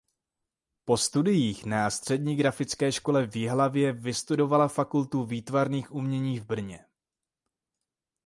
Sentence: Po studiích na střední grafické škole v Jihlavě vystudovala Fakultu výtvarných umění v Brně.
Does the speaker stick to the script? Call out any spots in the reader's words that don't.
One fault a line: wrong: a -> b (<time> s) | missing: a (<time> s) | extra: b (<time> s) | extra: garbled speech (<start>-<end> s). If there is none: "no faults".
no faults